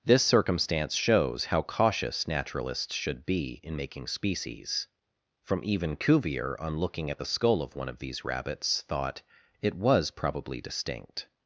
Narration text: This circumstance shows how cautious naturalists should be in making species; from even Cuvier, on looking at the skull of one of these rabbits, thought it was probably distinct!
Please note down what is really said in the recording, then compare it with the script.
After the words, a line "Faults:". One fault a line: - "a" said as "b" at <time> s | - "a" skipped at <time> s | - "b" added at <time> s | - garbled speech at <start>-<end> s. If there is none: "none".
This circumstance shows how cautious naturalists should be in making species; from even Cuvier, on looking at the skull of one of these rabbits, thought it was probably distinct!
Faults:
none